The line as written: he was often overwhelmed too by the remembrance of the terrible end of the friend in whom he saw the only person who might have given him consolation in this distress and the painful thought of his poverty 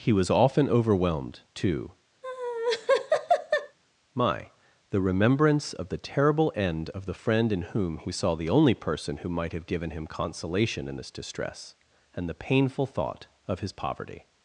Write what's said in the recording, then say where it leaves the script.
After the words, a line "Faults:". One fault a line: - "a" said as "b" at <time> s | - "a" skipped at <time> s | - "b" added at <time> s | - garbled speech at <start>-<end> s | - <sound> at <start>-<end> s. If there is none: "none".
he was often overwhelmed too my the remembrance of the terrible end of the friend in whom he saw the only person who might have given him consolation in this distress and the painful thought of his poverty
Faults:
- laugh at 2.2-3.8 s
- "by" said as "my" at 4.1 s